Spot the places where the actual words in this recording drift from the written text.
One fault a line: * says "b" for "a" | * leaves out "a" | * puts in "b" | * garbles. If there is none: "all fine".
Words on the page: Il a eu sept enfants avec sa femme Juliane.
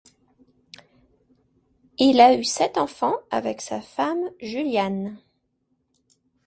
all fine